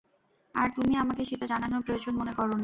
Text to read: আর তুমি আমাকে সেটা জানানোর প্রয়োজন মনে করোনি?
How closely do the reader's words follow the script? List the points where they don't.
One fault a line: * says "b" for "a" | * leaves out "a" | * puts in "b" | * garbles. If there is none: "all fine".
all fine